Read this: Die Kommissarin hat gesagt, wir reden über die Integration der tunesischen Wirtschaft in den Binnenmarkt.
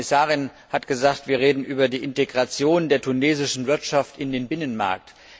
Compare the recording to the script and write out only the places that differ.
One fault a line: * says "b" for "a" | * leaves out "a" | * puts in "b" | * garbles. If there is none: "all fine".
all fine